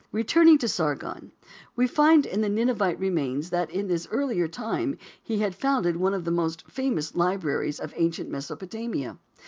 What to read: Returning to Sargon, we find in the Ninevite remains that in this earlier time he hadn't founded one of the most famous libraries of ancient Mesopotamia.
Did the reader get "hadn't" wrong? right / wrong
wrong